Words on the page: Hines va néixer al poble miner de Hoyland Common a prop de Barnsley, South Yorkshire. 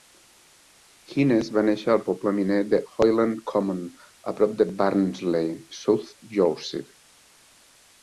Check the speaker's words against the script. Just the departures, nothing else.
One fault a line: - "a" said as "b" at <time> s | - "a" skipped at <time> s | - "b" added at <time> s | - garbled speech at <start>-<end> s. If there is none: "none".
none